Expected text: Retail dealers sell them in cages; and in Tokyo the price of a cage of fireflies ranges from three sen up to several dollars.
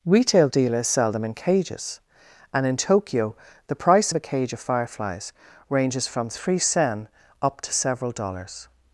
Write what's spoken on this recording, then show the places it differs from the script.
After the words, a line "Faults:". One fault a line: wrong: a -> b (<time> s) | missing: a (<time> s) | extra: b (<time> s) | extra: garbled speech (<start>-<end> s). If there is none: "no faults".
Retail dealers sell them in cages; and in Tokyo the price of a cage of fireflies ranges from three sen up to several dollars.
Faults:
no faults